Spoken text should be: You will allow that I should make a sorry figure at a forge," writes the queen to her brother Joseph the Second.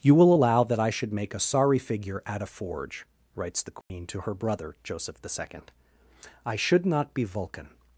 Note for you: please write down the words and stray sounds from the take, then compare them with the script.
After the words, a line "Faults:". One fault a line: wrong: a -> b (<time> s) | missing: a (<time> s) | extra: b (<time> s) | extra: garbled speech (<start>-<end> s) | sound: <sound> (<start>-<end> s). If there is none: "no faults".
You will allow that I should make a sorry figure at a forge," writes the queen to her brother Joseph the Second. "I should not be Vulcan
Faults:
sound: dropout (3.8-3.9 s)
extra: I should not be Vulcan (6.5 s)